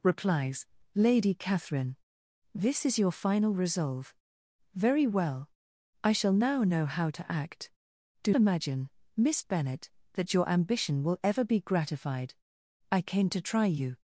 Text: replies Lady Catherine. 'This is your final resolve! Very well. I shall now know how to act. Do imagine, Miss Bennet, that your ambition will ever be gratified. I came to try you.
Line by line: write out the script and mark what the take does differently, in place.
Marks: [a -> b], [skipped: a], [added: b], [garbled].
replies Lady Catherine. 'This is your final resolve! Very well. I shall now know how to act. Do imagine, Miss Bennet, that your ambition will ever be gratified. I came to try you.